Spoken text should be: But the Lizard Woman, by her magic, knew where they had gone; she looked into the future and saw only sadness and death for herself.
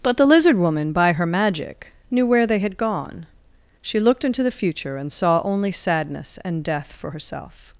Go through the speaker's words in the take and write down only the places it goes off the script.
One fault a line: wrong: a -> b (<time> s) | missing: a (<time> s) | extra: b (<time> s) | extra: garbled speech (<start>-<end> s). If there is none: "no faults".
no faults